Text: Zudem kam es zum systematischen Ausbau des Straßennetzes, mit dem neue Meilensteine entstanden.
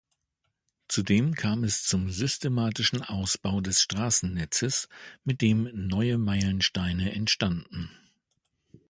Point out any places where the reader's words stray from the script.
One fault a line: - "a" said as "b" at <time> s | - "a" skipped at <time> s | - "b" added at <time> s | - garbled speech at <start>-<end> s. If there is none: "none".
none